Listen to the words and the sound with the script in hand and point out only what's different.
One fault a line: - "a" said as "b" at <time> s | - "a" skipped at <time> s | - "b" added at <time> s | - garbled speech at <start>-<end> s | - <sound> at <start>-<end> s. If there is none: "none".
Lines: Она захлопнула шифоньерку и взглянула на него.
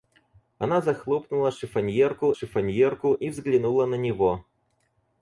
- "шифоньерку" added at 2.3 s